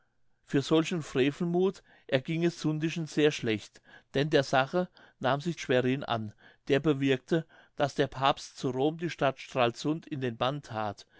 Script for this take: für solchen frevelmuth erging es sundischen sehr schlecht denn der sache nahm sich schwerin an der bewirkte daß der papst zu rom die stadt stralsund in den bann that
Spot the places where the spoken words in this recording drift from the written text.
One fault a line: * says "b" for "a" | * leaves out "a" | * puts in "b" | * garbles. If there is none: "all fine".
all fine